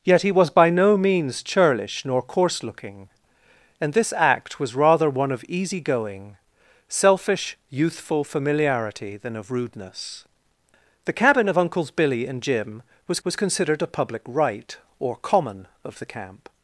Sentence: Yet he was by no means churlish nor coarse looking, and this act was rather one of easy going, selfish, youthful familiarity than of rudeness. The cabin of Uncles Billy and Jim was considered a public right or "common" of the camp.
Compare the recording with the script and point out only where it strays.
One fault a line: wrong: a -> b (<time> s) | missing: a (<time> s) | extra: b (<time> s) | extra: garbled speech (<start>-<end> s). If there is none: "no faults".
extra: was (13.2 s)